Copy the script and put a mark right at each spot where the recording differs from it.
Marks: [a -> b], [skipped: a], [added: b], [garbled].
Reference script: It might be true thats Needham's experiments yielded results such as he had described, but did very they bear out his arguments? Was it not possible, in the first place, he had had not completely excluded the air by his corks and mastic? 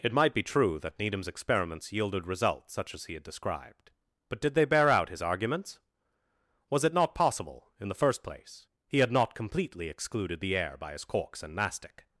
It might be true [thats -> that] Needham's experiments yielded results such as he had described, but did [skipped: very] they bear out his arguments? Was it not possible, in the first place, he had [skipped: had] not completely excluded the air by his corks and mastic?